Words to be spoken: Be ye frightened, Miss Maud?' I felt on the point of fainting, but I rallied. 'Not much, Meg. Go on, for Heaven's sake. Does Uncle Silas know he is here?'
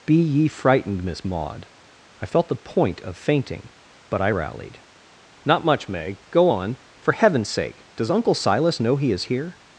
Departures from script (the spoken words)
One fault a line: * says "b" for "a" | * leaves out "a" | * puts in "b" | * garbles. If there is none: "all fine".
* leaves out "on"